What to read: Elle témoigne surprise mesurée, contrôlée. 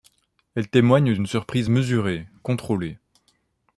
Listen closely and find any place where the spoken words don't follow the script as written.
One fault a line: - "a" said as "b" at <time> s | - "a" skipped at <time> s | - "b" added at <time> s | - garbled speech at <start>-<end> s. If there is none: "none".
- "d'une" added at 1.1 s